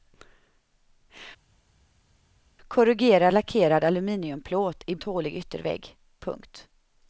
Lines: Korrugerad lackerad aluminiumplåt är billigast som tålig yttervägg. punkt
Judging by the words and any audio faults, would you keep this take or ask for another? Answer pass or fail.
fail